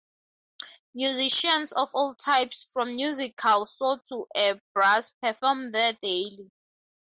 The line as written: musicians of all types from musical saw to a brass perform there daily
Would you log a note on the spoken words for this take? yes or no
no